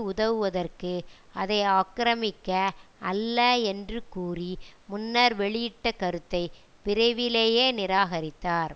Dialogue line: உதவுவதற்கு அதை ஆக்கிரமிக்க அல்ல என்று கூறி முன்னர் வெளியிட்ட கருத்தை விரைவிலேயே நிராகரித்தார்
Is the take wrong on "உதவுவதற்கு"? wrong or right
right